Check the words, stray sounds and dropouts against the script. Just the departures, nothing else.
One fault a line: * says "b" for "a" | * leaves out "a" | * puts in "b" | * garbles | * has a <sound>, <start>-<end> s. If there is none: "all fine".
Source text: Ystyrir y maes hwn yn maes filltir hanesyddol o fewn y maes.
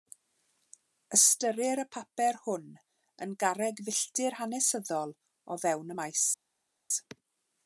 * says "papur" for "maes"
* says "garreg" for "maes"